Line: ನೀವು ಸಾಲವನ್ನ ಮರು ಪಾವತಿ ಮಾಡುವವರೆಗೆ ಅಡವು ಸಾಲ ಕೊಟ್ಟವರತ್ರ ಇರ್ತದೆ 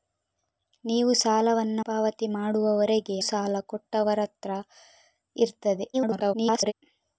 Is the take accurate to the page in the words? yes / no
no